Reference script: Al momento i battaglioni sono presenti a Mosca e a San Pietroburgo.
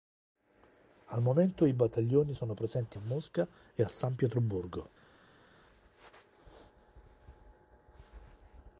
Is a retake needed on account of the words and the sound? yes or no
no